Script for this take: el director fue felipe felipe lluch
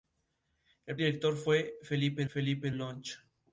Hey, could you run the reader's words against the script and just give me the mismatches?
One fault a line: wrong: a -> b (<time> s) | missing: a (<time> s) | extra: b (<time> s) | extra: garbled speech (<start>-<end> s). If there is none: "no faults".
no faults